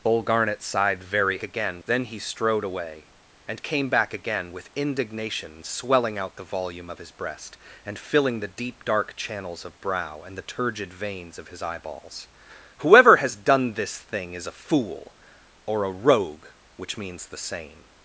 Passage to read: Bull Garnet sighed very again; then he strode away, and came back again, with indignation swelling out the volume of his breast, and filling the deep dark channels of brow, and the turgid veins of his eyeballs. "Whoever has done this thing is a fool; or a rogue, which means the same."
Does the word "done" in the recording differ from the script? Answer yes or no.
no